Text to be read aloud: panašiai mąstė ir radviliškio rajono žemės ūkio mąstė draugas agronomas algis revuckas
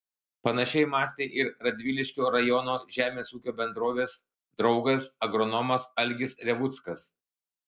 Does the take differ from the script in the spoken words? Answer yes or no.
yes